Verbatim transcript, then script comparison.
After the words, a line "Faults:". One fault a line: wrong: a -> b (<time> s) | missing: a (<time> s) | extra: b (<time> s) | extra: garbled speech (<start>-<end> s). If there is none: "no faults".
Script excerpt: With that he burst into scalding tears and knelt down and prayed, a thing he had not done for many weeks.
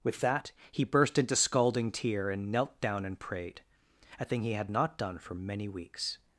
With that he burst into scalding tear and knelt down and prayed, a thing he had not done for many weeks.
Faults:
wrong: tears -> tear (1.9 s)